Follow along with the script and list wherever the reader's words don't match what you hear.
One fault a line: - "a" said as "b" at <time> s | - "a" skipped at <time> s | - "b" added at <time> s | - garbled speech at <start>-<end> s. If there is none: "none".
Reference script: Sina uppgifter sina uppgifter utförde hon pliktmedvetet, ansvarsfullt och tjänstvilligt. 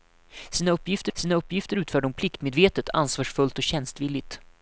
none